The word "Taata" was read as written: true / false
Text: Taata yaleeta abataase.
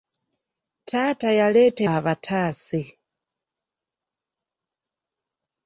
true